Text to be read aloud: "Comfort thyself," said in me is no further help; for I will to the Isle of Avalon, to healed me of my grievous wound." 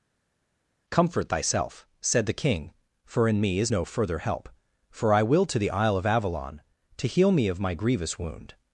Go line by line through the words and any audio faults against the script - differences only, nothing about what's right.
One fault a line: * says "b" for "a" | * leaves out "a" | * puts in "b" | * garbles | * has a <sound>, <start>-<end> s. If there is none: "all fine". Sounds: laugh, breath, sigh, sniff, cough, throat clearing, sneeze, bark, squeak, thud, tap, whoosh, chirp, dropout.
* puts in "the king for"
* says "heal" for "healed"